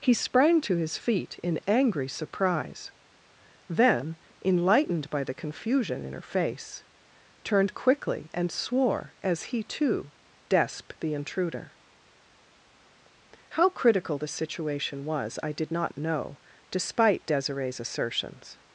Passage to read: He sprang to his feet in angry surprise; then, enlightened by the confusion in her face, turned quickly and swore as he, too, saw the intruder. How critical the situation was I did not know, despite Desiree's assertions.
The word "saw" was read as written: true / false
false